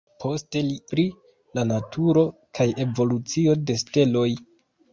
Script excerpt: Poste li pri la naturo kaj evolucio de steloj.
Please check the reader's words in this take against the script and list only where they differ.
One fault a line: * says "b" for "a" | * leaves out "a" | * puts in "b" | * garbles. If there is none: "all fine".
all fine